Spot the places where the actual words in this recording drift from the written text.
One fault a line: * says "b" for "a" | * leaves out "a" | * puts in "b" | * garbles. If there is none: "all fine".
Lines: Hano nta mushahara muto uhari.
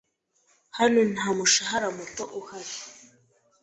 all fine